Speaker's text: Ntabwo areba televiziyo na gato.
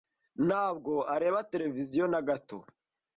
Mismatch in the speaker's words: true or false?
false